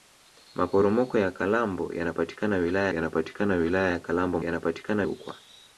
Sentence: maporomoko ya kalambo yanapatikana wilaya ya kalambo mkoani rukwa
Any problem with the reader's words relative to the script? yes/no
yes